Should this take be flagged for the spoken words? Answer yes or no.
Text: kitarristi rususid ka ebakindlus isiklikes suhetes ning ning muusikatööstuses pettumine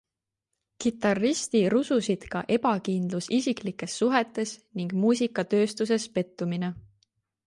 yes